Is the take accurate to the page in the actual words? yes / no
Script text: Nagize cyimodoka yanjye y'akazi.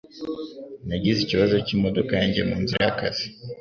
no